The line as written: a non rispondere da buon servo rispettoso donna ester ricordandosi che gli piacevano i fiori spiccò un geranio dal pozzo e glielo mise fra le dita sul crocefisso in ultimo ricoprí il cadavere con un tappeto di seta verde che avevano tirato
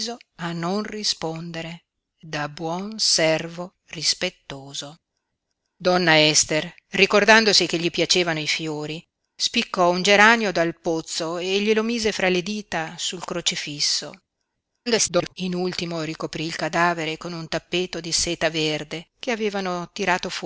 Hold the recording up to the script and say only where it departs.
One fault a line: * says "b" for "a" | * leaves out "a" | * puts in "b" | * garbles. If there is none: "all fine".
* garbles